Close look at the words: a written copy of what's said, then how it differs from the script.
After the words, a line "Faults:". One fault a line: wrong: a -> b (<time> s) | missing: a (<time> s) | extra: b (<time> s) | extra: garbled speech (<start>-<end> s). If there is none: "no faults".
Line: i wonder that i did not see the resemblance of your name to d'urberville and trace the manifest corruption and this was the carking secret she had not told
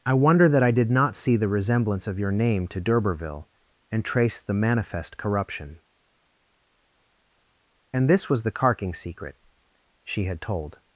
i wonder that i did not see the resemblance of your name to d'urberville and trace the manifest corruption and this was the carking secret she had told
Faults:
missing: not (10.4 s)